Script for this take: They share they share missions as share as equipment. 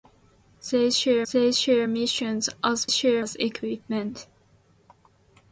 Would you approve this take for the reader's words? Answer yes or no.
yes